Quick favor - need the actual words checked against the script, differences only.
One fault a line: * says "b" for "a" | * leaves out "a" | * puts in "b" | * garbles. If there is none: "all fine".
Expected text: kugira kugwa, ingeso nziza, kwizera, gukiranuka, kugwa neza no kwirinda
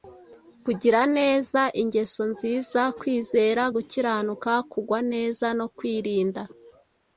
* says "neza" for "kugwa"